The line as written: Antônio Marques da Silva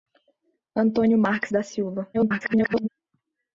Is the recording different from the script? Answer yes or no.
yes